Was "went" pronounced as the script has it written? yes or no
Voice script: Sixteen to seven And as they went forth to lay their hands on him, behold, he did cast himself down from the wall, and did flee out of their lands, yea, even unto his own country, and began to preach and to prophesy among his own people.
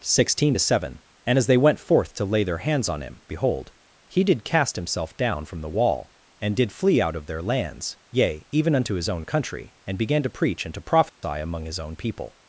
yes